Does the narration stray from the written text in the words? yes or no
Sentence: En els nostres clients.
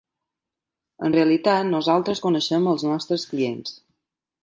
yes